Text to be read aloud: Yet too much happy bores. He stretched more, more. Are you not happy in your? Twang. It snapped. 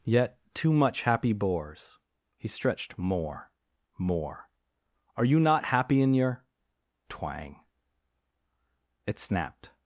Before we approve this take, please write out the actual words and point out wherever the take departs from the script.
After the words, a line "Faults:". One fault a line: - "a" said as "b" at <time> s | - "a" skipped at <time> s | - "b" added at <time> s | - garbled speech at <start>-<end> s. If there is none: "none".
Yet too much happy bores. He stretched more, more. Are you not happy in your? Twang. It snapped.
Faults:
none